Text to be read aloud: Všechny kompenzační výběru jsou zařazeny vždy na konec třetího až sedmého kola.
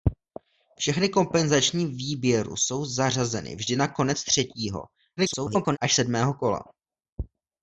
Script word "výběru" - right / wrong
right